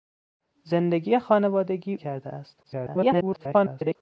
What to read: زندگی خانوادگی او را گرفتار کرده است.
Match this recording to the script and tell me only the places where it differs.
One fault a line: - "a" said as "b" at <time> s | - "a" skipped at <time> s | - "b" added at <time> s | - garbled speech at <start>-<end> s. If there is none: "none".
- "او را گرفتار" skipped at 1.9 s
- garbled speech at 2.6-4.0 s